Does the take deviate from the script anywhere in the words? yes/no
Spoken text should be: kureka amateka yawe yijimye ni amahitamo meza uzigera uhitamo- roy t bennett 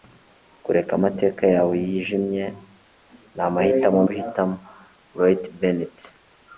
yes